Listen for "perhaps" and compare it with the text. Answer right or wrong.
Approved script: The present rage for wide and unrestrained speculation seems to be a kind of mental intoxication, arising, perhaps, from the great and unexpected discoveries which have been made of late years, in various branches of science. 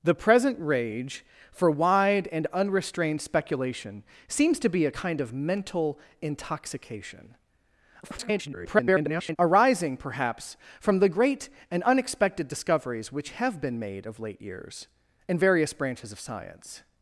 right